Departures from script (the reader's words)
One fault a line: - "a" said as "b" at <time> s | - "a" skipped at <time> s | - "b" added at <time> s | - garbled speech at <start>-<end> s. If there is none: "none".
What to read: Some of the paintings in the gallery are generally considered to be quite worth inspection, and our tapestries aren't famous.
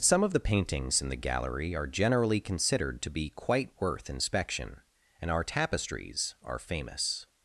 - "aren't" said as "are" at 6.4 s